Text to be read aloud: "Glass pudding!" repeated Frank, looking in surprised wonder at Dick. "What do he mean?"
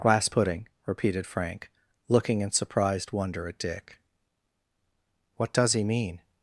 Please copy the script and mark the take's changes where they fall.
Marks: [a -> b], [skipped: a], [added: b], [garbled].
"Glass pudding!" repeated Frank, looking in surprised wonder at Dick. "What [do -> does] he mean?"